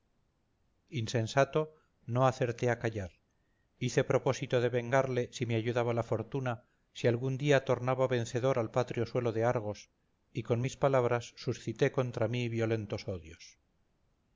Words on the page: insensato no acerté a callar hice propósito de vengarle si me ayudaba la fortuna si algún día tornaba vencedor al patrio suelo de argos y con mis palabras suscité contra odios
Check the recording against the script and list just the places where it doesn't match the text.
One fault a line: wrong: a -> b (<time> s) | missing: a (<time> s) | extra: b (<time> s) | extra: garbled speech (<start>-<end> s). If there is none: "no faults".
extra: mí violentos (12.3 s)